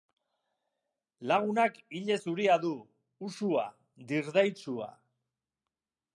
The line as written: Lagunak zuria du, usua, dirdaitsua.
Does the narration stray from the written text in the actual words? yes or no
yes